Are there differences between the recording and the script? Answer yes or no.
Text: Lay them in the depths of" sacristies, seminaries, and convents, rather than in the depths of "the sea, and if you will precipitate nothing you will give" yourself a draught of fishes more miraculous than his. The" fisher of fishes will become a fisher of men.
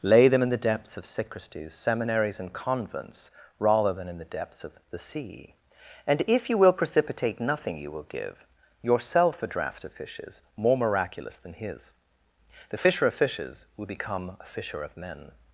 no